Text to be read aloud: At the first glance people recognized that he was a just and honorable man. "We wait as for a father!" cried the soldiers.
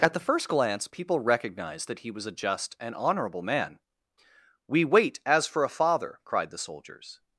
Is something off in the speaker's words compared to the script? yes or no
no